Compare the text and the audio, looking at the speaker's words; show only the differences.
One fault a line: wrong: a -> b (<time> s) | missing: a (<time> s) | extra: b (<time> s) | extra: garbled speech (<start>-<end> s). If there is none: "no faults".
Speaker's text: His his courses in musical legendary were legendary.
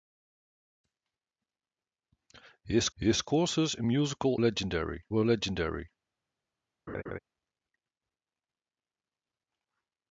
no faults